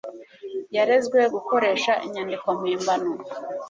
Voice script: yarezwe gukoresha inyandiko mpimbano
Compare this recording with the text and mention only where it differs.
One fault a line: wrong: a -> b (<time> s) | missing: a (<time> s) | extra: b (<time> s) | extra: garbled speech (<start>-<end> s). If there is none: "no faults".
no faults